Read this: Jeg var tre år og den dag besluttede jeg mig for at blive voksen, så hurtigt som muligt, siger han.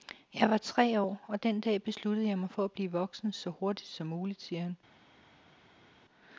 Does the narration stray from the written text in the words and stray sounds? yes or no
no